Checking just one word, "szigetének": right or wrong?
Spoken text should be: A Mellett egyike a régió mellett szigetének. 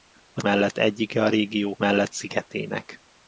right